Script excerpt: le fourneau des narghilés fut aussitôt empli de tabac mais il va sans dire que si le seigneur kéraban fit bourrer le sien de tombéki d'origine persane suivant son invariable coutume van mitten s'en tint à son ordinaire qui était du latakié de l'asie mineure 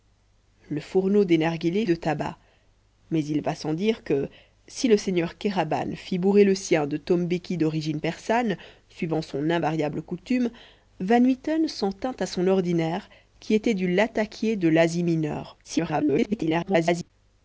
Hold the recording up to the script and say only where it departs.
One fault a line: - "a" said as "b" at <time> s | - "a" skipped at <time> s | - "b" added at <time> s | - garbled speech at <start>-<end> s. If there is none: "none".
- "fut aussitôt empli" skipped at 1.9 s
- garbled speech at 15.6-17.1 s